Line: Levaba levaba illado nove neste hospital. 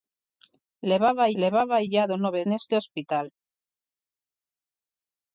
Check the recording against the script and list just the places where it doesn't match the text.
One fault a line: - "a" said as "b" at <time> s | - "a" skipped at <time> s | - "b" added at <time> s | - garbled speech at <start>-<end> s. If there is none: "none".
none